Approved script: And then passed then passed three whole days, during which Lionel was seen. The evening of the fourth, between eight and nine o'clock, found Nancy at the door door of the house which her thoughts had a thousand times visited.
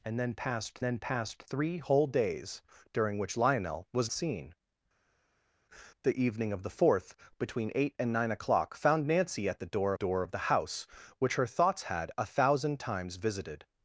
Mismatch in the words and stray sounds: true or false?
false